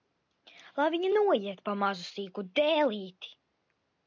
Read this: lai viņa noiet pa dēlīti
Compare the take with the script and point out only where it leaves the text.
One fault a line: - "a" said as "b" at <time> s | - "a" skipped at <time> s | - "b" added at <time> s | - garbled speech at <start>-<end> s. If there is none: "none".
- "mazu sīku" added at 1.8 s